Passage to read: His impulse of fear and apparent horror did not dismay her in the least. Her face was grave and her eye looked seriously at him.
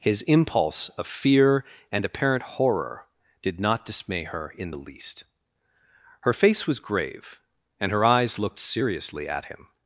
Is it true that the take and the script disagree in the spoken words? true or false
true